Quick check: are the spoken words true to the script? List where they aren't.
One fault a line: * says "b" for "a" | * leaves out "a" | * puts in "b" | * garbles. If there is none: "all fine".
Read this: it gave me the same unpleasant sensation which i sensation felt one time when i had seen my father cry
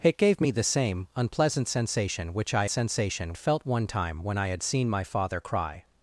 all fine